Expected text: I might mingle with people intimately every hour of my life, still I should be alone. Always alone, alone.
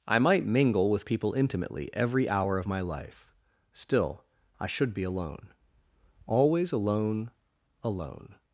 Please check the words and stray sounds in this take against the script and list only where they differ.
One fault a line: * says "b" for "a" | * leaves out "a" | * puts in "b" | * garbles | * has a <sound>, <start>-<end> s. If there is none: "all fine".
all fine